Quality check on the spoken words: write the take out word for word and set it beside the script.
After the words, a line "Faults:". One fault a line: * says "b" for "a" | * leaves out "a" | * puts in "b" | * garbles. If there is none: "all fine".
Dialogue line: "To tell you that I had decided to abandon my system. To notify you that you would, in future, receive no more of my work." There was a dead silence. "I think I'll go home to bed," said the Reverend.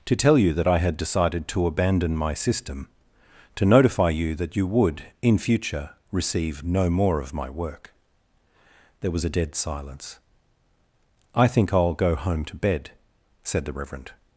"To tell you that I had decided to abandon my system. To notify you that you would, in future, receive no more of my work." There was a dead silence. "I think I'll go home to bed," said the Reverend.
Faults:
all fine